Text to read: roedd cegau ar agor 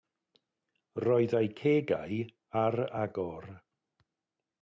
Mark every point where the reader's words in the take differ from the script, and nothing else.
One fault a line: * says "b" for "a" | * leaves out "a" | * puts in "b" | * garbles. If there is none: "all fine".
* puts in "eu"